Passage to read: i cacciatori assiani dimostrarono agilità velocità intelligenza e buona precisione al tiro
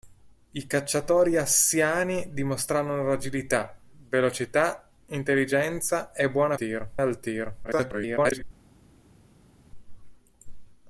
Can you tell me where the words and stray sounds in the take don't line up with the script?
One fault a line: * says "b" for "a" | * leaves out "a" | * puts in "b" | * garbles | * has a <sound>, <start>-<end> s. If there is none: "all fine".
* says "tiro" for "precisione"
* garbles